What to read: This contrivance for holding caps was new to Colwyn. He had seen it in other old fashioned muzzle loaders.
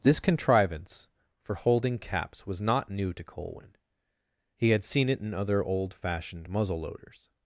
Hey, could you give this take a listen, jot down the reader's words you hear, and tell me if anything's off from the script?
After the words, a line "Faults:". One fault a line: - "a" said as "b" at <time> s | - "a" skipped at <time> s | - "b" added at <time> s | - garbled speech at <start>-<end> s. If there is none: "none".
This contrivance for holding caps was not new to Colwyn. He had seen it in other old fashioned muzzle loaders.
Faults:
- "not" added at 2.6 s